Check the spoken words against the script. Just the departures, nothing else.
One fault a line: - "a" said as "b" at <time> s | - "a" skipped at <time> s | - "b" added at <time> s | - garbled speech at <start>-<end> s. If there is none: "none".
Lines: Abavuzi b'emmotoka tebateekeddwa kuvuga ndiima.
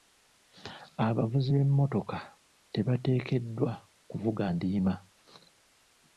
none